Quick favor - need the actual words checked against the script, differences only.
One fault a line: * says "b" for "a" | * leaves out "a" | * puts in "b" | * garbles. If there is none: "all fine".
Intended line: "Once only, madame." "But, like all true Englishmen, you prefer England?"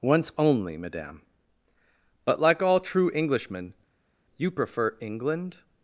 all fine